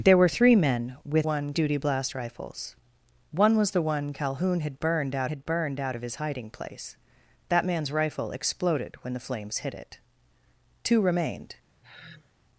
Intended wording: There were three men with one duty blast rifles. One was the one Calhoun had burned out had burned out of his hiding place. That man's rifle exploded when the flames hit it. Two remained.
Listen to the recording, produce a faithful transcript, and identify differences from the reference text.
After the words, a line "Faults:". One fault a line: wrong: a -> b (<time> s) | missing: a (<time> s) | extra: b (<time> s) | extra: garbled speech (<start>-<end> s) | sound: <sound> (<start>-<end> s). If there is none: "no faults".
There were three men with one duty blast rifles. One was the one Calhoun had burned out had burned out of his hiding place. That man's rifle exploded when the flames hit it. Two remained.
Faults:
sound: sigh (11.8-12.3 s)